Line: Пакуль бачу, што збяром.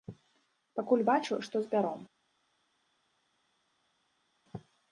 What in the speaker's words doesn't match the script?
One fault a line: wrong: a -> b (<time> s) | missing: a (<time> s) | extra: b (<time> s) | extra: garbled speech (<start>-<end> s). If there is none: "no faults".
no faults